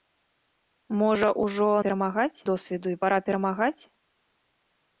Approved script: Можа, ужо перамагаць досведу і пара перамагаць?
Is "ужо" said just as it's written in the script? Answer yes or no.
yes